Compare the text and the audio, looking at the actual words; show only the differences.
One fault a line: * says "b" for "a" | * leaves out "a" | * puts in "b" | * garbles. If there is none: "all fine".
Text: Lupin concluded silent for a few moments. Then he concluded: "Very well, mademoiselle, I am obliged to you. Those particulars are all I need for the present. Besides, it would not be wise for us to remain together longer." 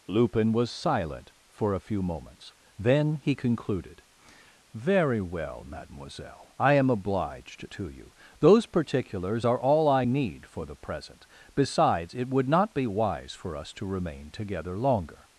* says "was" for "concluded"